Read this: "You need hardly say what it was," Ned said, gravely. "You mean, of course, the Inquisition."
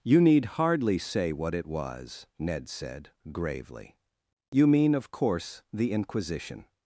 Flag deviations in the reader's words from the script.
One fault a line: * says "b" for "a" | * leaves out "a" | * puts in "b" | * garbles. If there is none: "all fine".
all fine